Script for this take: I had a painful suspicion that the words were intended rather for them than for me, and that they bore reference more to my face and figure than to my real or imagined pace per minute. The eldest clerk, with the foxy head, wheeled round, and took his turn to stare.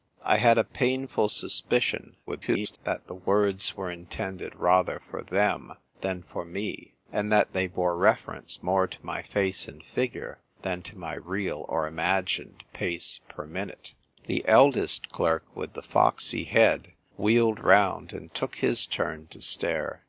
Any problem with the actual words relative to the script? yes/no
yes